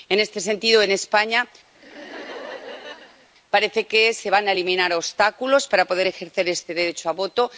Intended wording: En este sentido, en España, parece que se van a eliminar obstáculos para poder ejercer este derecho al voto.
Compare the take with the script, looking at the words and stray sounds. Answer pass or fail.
fail